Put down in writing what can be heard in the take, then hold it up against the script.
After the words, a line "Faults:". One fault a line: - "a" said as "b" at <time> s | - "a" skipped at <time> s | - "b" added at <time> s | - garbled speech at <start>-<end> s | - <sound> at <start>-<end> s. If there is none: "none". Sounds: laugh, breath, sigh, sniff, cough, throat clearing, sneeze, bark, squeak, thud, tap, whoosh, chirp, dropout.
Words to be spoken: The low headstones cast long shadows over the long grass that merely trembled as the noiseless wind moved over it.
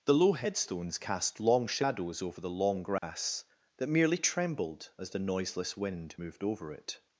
The low headstones cast long shadows over the long grass that merely trembled as the noiseless wind moved over it.
Faults:
- dropout at 3.0-3.0 s